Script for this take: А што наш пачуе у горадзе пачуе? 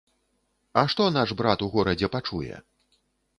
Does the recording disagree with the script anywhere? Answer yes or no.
yes